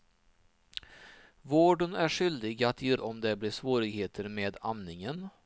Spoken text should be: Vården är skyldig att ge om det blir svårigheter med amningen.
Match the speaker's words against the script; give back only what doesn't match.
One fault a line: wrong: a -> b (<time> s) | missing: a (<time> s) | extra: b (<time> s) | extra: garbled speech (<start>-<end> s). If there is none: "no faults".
no faults